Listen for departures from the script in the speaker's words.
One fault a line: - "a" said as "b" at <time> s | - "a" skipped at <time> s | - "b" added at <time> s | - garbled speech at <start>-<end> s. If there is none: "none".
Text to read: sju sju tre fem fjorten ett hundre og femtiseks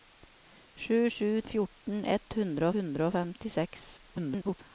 - "tre fem" skipped at 1.3 s
- "hundre" added at 2.8 s
- garbled speech at 4.0-4.6 s